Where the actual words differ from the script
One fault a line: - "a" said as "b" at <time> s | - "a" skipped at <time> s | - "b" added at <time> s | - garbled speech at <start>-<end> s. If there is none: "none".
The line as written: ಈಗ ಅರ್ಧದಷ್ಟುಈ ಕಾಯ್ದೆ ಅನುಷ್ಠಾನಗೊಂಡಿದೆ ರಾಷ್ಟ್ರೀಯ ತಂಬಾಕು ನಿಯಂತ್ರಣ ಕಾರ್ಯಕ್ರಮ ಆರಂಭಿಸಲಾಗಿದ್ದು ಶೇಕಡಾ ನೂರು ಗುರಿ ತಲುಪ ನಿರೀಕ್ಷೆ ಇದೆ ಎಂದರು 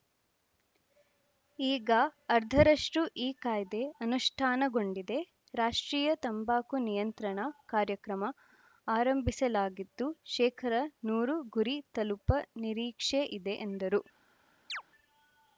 none